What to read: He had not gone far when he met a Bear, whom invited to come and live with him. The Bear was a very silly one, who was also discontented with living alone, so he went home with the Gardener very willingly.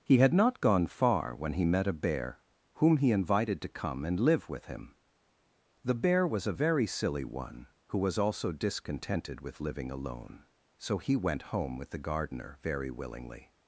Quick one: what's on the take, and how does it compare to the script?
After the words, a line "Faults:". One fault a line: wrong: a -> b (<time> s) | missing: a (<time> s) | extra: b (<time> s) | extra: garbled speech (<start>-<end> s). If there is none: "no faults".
He had not gone far when he met a Bear, whom he invited to come and live with him. The Bear was a very silly one, who was also discontented with living alone, so he went home with the Gardener very willingly.
Faults:
extra: he (3.0 s)